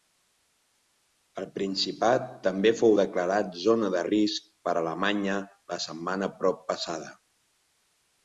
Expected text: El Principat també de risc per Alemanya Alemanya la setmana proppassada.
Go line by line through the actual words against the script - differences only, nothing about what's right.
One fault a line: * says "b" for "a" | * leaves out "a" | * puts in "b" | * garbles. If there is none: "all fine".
* puts in "fou declarat zona"
* leaves out "Alemanya"